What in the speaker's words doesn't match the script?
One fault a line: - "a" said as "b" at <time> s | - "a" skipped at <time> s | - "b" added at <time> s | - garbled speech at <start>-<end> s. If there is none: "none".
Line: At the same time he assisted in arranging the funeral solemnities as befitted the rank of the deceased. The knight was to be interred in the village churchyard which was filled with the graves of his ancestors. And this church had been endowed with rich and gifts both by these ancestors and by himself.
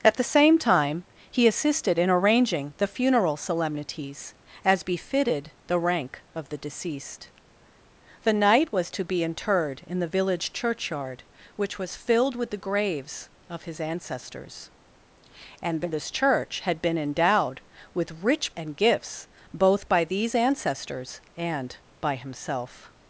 none